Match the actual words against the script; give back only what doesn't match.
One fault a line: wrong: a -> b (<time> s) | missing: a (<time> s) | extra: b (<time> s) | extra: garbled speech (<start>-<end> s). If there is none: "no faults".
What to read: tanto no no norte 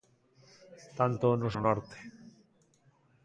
no faults